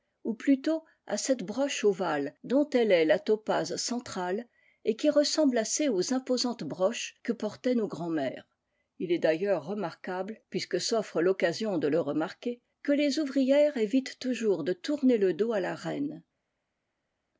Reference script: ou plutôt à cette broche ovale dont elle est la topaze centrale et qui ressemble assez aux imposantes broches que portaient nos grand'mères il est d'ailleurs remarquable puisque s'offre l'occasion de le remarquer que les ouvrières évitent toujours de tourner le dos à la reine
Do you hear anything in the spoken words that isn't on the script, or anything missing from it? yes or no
no